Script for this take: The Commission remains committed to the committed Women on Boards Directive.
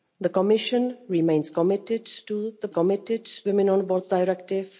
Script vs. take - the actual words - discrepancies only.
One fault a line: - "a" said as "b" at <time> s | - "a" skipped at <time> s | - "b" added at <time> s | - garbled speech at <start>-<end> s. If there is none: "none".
none